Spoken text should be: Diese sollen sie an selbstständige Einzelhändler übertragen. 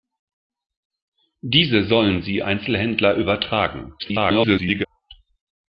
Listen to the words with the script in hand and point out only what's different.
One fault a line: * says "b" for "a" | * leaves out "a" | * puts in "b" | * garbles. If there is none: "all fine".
* leaves out "an selbstständige"
* garbles